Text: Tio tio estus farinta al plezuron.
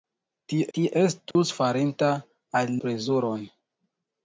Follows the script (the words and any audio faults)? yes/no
no